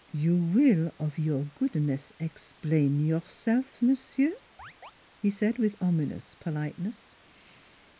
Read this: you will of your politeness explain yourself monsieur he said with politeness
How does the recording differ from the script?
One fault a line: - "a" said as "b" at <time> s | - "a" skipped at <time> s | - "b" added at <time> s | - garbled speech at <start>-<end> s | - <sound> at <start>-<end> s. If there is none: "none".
- "politeness" said as "goodness" at 1.5 s
- chirp at 4.6-4.9 s
- "ominous" added at 5.8 s